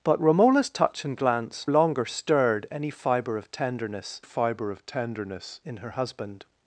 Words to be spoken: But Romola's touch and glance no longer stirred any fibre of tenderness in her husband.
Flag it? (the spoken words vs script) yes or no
yes